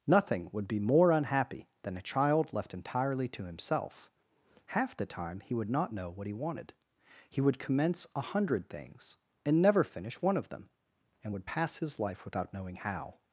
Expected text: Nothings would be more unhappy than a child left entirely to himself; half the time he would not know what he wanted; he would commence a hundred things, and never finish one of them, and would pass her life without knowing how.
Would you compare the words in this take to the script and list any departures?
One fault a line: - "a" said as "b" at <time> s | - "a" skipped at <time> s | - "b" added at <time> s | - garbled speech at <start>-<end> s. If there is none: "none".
- "Nothings" said as "Nothing" at 0.1 s
- "her" said as "his" at 11.8 s